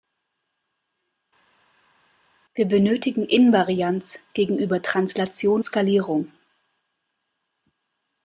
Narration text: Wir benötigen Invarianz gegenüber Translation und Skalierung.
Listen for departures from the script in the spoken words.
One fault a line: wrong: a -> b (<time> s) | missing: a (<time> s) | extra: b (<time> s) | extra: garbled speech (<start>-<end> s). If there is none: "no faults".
missing: und (5.6 s)